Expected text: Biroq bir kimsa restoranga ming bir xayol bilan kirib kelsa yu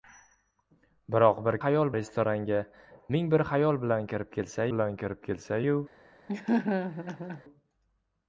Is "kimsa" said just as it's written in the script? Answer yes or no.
no